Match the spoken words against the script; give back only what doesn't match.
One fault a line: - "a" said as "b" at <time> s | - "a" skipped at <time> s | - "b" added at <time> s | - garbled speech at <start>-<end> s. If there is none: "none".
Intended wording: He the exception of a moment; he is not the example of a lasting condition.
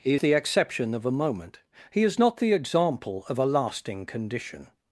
none